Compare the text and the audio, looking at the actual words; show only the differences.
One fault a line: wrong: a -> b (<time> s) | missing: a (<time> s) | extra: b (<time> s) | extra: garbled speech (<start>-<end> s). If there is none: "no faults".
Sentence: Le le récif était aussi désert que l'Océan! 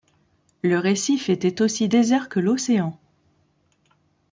missing: le (0.8 s)